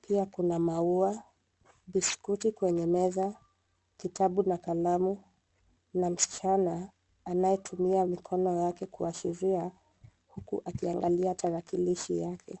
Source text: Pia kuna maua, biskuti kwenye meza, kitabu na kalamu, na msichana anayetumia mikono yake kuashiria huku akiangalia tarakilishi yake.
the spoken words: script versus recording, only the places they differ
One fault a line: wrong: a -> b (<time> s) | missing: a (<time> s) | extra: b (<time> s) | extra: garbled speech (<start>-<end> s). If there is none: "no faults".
no faults